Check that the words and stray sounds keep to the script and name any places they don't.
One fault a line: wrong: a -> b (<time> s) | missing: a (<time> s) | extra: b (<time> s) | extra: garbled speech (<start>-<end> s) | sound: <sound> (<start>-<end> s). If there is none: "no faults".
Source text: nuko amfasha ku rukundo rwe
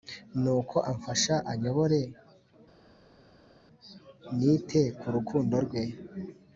extra: anyobore nite (1.5 s)